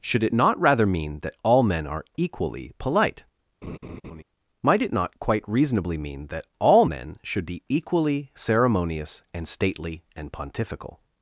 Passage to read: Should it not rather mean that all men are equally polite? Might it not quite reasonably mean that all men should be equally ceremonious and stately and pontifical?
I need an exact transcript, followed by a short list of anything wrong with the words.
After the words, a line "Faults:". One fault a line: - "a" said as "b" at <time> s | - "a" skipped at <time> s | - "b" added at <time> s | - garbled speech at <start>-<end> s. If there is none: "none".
Should it not rather mean that all men are equally polite? Might it not quite reasonably mean that all men should be equally ceremonious and stately and pontifical?
Faults:
none